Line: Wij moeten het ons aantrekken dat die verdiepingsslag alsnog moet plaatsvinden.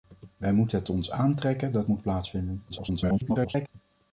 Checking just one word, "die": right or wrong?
wrong